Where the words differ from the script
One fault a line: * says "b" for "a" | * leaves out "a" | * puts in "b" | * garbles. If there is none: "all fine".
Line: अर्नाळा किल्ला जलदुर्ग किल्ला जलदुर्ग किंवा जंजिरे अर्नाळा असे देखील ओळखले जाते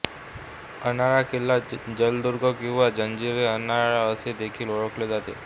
* leaves out "किल्ला जलदुर्ग"